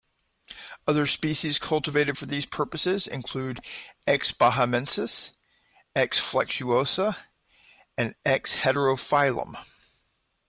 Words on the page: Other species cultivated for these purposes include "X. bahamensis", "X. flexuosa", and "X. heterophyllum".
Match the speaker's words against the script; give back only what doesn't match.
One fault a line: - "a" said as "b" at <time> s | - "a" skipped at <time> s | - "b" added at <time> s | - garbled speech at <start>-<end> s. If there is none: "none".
none